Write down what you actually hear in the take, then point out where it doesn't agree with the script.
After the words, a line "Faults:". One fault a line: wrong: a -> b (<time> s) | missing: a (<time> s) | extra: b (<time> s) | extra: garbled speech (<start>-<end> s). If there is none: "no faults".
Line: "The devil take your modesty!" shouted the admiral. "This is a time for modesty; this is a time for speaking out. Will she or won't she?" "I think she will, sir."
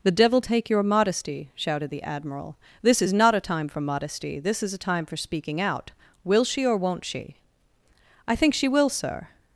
"The devil take your modesty!" shouted the admiral. "This is not a time for modesty; this is a time for speaking out. Will she or won't she?" "I think she will, sir."
Faults:
extra: not (3.1 s)